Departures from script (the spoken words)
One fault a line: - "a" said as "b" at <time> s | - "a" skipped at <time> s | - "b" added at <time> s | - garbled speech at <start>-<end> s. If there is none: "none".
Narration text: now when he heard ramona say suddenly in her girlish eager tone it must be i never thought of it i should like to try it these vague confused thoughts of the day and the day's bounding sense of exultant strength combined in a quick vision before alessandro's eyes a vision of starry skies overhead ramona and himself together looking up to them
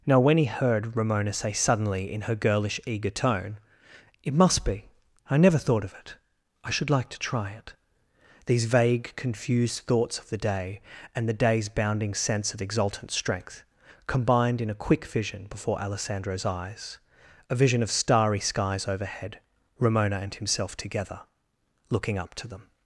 none